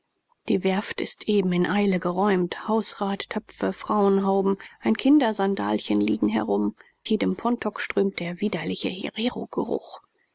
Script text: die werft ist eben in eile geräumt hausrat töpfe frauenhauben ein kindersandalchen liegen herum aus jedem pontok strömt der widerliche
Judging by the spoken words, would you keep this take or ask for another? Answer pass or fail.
fail